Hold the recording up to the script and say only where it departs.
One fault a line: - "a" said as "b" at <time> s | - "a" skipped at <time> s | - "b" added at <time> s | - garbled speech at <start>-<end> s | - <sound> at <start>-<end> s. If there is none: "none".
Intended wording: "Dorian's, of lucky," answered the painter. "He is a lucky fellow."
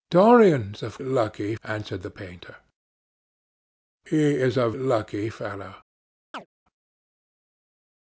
- chirp at 6.3-6.5 s